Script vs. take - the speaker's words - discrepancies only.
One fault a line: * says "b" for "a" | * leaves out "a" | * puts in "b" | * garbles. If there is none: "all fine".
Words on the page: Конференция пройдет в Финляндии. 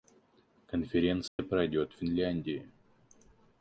all fine